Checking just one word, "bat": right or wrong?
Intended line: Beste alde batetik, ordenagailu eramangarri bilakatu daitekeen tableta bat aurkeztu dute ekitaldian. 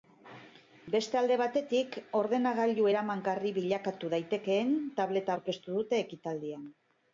wrong